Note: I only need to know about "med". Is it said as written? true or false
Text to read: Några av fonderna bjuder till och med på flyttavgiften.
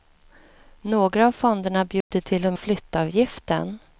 false